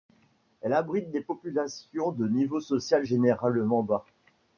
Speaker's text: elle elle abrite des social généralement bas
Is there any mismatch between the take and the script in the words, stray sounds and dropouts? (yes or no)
yes